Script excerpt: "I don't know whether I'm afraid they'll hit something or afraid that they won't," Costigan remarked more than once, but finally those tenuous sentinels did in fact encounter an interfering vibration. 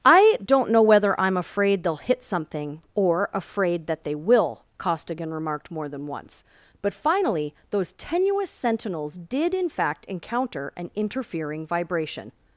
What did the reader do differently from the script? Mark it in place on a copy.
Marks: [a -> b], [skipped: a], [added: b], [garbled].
"I don't know whether I'm afraid they'll hit something or afraid that they [won't," -> will] Costigan remarked more than once, but finally those tenuous sentinels did in fact encounter an interfering vibration.